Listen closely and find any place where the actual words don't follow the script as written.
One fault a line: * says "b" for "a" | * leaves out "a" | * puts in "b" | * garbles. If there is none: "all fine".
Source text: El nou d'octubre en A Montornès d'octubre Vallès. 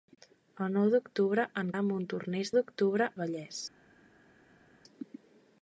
all fine